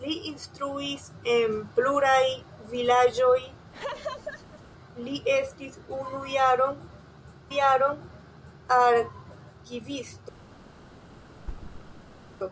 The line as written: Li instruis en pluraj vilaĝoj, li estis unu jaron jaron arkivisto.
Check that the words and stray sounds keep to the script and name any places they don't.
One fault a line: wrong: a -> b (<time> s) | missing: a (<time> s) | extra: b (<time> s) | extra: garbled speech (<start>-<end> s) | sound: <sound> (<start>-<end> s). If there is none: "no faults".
sound: laugh (3.7-4.6 s)
sound: thud (11.4-12.3 s)